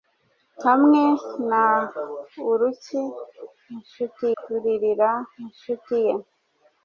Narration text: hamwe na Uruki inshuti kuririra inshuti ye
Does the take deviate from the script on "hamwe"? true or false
false